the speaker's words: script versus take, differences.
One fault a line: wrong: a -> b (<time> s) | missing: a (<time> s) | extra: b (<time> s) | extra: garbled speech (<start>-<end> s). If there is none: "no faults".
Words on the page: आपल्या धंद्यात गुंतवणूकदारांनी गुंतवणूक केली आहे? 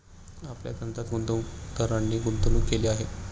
no faults